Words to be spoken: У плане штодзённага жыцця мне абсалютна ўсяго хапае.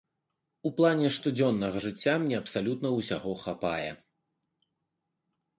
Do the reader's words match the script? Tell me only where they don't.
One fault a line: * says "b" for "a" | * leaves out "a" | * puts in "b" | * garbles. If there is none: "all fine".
all fine